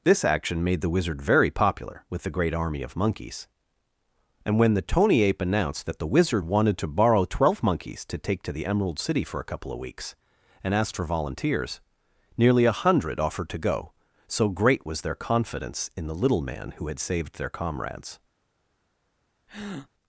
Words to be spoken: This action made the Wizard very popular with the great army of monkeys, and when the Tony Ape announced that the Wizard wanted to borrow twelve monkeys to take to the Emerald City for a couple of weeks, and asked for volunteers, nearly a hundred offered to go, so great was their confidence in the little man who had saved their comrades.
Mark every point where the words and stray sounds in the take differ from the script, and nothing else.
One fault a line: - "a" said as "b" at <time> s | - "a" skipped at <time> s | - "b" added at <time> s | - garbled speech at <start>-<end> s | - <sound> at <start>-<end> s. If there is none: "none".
- breath at 19.5-19.9 s